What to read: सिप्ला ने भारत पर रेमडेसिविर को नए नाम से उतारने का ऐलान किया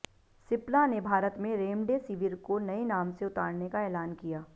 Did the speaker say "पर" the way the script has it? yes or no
no